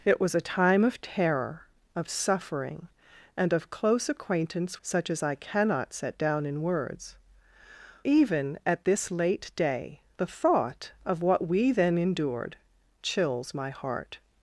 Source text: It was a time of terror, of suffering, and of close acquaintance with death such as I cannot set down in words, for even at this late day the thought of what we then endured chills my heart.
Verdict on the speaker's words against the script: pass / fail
fail